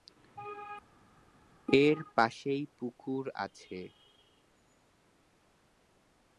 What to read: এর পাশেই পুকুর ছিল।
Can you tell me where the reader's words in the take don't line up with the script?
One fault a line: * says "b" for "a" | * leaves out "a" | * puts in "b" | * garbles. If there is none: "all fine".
* says "আছে" for "ছিল"